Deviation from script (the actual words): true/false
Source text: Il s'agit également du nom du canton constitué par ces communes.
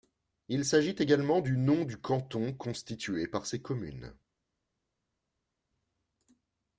false